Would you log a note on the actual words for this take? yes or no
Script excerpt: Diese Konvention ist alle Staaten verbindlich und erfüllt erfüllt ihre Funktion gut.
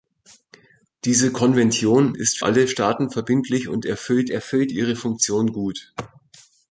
no